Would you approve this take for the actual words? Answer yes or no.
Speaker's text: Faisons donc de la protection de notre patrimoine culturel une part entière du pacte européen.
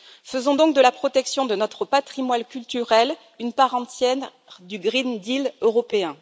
no